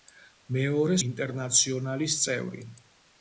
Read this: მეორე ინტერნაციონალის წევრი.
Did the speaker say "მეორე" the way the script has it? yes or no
yes